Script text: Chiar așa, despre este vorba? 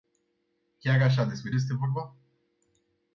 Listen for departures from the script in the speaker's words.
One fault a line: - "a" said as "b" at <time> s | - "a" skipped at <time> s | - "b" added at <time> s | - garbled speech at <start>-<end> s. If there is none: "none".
none